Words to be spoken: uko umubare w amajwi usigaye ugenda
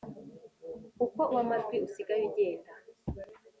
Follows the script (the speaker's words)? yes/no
no